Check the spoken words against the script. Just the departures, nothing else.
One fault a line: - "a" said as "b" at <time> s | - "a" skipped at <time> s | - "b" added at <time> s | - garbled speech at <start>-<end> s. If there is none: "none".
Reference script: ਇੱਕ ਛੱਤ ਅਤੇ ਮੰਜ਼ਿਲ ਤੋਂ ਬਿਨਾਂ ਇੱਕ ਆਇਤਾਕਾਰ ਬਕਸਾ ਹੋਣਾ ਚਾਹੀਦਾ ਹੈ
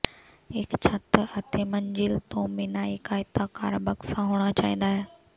none